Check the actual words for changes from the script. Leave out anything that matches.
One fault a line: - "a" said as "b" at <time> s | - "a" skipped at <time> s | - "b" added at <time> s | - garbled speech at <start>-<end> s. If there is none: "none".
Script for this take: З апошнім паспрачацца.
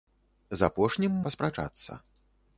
none